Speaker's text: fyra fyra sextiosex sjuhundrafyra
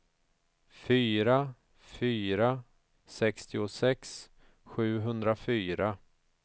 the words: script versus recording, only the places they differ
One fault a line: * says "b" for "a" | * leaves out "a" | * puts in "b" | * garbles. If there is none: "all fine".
all fine